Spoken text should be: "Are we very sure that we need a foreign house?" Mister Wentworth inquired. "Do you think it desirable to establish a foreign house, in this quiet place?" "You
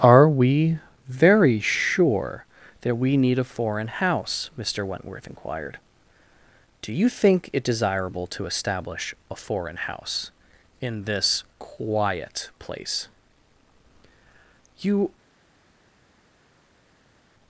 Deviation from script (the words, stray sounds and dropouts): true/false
false